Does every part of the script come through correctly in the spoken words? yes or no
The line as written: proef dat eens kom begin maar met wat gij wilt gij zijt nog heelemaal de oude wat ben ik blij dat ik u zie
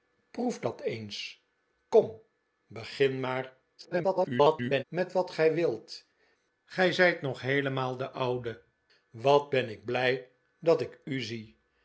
no